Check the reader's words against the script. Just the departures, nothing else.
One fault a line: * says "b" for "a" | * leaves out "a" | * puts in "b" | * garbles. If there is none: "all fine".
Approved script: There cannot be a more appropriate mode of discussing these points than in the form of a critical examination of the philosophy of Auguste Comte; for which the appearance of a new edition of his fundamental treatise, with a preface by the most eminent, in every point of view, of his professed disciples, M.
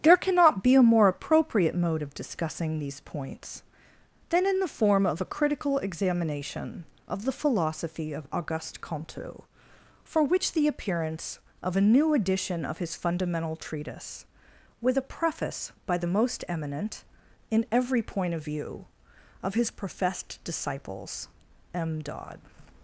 * puts in "dodd"